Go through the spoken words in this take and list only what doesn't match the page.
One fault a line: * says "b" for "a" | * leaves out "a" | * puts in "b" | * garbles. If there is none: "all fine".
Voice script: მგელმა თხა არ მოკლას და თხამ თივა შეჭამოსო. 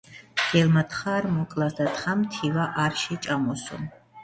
* puts in "არ"